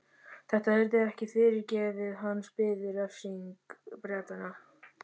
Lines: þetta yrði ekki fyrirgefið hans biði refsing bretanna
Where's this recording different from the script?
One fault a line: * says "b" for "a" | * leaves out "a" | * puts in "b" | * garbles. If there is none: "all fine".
all fine